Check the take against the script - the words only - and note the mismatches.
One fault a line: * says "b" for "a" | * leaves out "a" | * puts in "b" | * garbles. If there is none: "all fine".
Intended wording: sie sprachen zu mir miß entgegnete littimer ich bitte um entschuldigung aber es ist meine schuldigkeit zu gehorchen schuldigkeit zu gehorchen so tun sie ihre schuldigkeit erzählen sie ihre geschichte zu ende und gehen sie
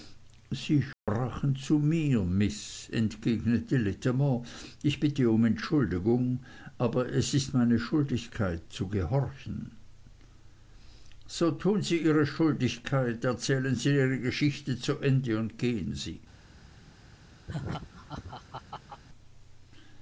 * leaves out "schuldigkeit zu gehorchen"